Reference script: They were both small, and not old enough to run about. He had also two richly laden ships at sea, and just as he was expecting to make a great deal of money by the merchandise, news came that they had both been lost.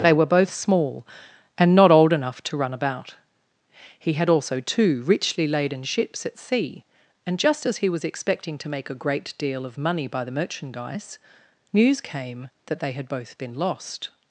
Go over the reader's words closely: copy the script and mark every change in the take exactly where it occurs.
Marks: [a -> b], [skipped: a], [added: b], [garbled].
They were both small, and not old enough to run about. He had also two richly laden ships at sea, and just as he was expecting to make a great deal of money by the merchandise, news came that they had both been lost.